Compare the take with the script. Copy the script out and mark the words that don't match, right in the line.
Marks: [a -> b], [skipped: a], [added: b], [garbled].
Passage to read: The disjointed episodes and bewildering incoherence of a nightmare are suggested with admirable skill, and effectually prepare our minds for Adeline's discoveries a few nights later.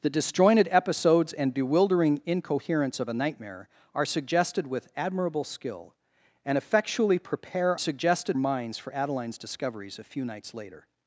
The disjointed episodes and bewildering incoherence of a nightmare are suggested with admirable skill, and effectually prepare [our -> suggested] minds for Adeline's discoveries a few nights later.